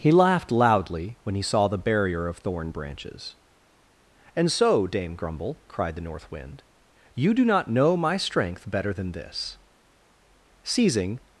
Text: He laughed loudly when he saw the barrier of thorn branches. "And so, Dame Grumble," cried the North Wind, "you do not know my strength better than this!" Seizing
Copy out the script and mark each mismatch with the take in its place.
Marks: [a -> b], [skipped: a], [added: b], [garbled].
He laughed loudly when he saw the barrier of thorn branches. "And so, Dame Grumble," cried the North Wind, "you do not know my strength better than this!" Seizing